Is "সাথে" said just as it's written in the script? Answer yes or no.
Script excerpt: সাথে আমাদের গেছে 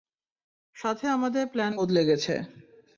yes